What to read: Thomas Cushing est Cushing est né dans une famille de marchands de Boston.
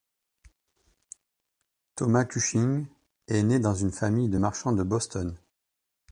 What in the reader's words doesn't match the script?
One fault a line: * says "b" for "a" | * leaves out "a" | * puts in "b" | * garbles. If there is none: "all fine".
* leaves out "Cushing est"